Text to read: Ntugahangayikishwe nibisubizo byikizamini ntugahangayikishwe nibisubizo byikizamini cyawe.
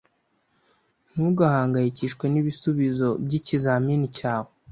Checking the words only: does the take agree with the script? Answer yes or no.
no